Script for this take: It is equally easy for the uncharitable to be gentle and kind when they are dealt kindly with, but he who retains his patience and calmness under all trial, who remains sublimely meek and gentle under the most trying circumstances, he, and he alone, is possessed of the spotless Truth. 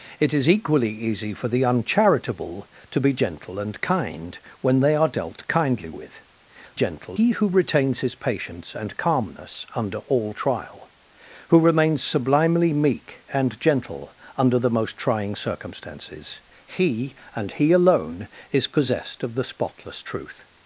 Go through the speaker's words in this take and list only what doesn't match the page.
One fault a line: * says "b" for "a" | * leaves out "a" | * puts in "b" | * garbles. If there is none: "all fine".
* says "gentle" for "but"